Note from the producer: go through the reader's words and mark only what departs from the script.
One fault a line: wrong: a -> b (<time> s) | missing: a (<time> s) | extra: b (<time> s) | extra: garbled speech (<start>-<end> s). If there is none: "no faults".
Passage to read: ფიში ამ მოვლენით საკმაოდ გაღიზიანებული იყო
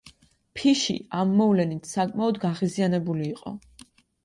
no faults